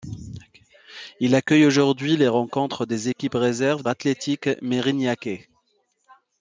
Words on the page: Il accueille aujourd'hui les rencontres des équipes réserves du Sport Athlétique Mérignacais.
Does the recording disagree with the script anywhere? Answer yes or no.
yes